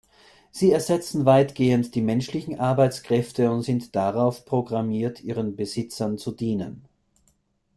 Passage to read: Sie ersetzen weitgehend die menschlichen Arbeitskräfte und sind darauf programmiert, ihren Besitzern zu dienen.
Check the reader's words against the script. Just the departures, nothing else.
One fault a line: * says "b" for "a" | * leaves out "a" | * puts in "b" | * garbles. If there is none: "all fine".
all fine